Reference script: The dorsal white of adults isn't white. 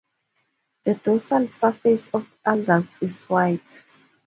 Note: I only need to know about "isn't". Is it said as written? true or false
false